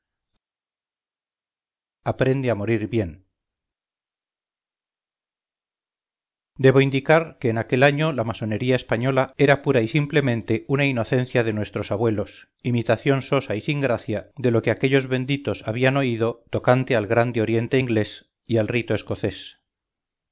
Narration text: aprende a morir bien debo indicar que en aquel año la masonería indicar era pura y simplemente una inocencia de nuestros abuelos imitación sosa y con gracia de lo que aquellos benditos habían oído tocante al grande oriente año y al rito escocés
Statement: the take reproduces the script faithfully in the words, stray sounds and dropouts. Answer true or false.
false